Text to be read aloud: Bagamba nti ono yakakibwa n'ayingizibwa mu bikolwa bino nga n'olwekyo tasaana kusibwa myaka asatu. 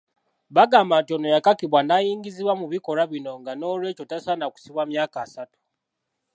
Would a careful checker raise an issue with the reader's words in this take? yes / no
no